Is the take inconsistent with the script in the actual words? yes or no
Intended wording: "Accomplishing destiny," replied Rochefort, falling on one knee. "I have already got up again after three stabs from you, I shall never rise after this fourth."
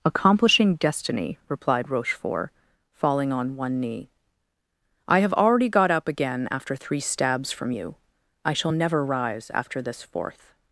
no